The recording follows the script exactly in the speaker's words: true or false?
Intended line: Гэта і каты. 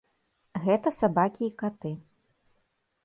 false